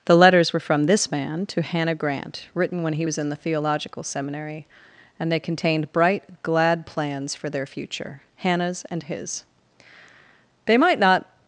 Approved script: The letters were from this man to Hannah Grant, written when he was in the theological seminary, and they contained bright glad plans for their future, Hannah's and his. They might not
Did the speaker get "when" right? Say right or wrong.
right